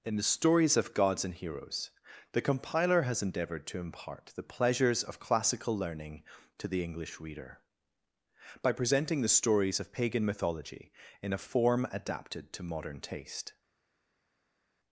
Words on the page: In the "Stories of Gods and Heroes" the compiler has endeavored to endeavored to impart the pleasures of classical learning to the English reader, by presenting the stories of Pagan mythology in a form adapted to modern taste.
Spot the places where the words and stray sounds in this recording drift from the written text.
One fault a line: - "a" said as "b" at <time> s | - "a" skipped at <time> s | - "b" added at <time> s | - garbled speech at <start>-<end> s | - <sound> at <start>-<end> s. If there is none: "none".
- "endeavored to" skipped at 3.8 s